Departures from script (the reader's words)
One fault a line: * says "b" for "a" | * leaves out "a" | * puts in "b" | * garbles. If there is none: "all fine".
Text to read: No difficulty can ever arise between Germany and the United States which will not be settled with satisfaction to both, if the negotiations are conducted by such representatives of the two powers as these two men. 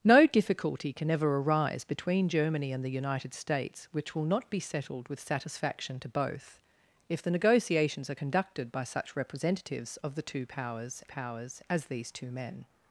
* puts in "powers"